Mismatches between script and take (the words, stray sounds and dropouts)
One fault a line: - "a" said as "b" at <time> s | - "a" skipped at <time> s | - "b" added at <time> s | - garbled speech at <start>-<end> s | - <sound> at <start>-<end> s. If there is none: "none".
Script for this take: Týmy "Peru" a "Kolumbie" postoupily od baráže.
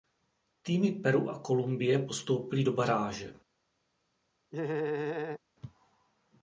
- "od" said as "do" at 2.6 s
- laugh at 4.5-5.4 s